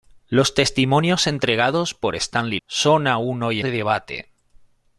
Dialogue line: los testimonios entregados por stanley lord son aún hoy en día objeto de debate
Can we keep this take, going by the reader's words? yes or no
no